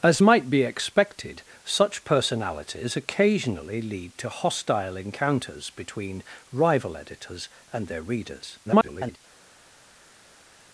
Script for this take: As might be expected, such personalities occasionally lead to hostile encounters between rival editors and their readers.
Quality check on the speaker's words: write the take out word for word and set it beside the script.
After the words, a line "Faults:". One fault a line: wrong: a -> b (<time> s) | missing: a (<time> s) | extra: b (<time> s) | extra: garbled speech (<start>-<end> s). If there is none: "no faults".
As might be expected, such personalities occasionally lead to hostile encounters between rival editors and their readers. [garbled]
Faults:
extra: garbled speech (8.7-9.2 s)